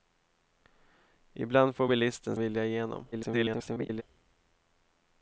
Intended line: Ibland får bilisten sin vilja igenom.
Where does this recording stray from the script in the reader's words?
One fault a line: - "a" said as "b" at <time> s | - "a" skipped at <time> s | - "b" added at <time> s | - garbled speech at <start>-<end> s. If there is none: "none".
- "sin" skipped at 2.4 s
- garbled speech at 3.1-4.0 s